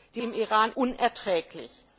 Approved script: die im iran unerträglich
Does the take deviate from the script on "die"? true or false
false